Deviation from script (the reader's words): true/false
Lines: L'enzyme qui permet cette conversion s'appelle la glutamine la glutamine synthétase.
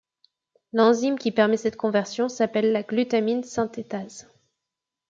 true